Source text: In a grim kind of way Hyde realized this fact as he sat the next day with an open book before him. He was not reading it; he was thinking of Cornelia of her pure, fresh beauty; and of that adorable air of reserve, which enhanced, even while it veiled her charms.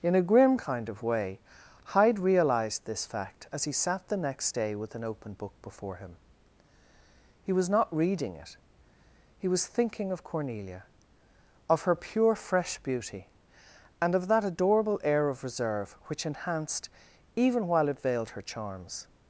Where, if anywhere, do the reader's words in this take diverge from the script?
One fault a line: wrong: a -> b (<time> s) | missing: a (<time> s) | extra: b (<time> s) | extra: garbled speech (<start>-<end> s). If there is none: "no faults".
no faults